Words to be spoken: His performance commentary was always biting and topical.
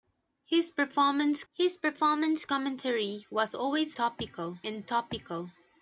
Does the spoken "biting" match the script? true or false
false